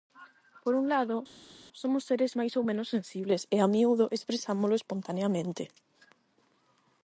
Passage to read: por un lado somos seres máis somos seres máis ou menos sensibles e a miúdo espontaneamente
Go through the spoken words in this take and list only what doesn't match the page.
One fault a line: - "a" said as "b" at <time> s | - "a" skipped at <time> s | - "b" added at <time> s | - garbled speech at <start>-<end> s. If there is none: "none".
- "somos seres máis" skipped at 2.5 s
- "expresámolo" added at 4.2 s